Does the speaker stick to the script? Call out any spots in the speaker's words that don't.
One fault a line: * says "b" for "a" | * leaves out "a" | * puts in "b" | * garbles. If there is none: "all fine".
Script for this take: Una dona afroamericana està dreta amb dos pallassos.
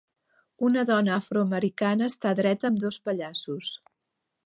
all fine